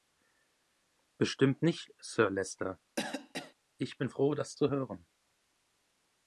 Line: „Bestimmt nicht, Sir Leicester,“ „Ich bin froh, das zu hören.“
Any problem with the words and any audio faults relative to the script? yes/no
yes